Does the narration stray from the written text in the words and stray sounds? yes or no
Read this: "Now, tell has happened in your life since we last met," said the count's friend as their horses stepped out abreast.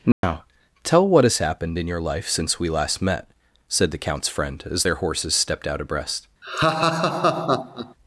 yes